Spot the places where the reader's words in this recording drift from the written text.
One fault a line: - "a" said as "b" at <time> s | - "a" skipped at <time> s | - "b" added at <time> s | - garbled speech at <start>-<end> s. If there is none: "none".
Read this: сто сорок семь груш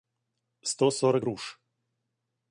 - "семь" skipped at 1.3 s